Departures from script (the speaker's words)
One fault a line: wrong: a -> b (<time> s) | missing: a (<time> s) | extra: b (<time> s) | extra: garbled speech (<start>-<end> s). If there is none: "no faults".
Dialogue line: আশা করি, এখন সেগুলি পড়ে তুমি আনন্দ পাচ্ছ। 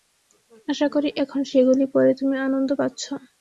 no faults